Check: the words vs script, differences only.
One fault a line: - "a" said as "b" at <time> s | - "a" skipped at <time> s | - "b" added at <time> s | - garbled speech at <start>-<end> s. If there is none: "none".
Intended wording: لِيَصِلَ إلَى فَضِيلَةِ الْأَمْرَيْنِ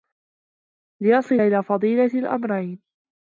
none